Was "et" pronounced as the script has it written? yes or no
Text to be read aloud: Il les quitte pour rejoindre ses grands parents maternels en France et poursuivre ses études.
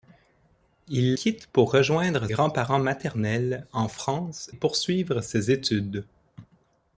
no